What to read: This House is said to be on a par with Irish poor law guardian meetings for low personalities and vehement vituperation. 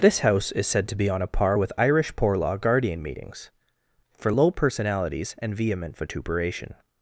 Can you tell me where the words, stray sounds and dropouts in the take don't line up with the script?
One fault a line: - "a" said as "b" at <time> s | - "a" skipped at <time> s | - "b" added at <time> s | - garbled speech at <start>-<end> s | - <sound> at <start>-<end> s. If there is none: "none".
none